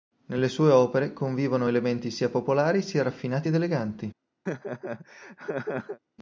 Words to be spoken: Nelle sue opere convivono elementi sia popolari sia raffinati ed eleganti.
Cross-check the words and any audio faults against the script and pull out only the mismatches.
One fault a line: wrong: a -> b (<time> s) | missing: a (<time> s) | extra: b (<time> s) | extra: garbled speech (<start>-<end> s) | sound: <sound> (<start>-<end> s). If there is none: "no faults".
sound: laugh (4.5-6.0 s)